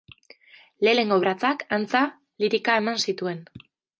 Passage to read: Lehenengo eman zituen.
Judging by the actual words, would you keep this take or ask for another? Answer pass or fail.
fail